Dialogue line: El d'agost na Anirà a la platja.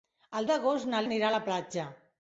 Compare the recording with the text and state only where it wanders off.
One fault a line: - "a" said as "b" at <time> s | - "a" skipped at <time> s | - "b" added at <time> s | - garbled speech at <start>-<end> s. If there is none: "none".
none